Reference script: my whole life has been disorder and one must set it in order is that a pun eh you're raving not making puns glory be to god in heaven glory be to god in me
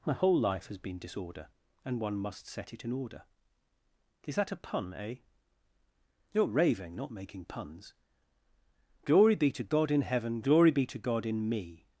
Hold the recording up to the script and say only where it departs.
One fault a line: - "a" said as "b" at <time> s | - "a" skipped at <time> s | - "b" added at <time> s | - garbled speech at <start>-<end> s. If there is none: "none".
none